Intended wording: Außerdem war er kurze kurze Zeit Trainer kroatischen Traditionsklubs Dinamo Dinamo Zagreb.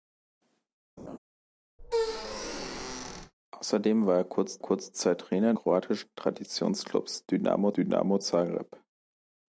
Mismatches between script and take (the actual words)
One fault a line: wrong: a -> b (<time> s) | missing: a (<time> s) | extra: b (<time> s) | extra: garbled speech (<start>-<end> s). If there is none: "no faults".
no faults